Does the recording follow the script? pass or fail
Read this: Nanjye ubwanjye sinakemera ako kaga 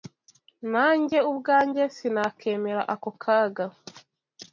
pass